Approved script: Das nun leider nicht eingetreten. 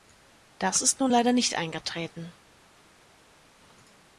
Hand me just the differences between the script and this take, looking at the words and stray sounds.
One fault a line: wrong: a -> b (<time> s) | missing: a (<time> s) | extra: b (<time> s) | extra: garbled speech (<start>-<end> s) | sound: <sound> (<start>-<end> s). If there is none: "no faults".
extra: ist (0.8 s)